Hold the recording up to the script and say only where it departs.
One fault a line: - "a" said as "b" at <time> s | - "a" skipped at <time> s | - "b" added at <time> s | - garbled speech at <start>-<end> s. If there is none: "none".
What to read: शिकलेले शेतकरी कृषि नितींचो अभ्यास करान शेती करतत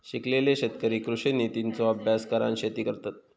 none